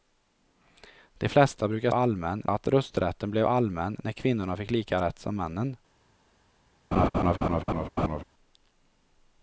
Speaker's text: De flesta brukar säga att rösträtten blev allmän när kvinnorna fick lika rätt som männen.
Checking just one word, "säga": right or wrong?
wrong